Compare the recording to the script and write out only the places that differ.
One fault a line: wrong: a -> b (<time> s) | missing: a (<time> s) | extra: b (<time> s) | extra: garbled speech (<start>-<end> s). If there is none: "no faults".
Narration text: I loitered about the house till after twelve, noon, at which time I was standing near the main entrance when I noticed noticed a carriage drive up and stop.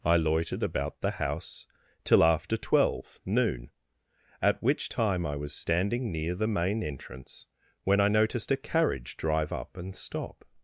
missing: noticed (8.5 s)